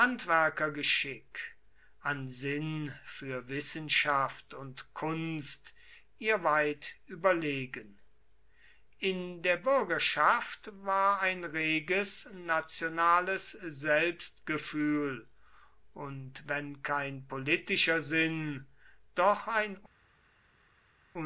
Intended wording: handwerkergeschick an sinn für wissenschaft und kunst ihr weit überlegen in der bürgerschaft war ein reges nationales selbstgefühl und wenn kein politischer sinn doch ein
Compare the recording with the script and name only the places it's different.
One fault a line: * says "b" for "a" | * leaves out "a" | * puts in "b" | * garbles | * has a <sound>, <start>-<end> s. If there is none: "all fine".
all fine